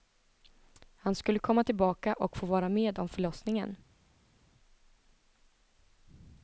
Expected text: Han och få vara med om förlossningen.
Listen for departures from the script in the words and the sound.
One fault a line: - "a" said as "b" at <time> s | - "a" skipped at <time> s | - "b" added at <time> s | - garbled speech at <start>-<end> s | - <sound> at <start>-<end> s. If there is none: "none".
- "skulle komma tillbaka" added at 1.1 s